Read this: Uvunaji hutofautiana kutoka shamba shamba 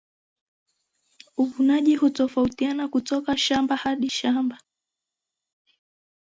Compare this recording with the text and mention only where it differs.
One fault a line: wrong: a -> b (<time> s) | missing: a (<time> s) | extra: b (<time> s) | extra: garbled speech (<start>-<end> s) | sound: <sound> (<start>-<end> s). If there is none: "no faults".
extra: hadi (3.7 s)